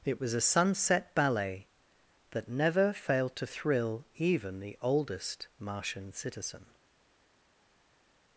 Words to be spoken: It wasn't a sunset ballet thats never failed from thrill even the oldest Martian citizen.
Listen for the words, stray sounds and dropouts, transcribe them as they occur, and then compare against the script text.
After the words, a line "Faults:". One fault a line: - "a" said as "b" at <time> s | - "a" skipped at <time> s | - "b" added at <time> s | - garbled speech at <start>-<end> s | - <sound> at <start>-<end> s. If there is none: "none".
It was a sunset ballet that never failed to thrill even the oldest Martian citizen.
Faults:
- "wasn't" said as "was" at 0.2 s
- "thats" said as "that" at 2.3 s
- "from" said as "to" at 3.4 s